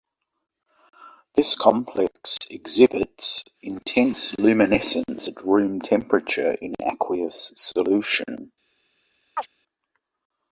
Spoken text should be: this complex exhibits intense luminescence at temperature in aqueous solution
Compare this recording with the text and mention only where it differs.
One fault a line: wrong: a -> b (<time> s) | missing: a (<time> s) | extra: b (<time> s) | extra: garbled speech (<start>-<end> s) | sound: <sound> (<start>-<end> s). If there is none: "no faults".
extra: room (5.4 s)
sound: chirp (9.4-9.5 s)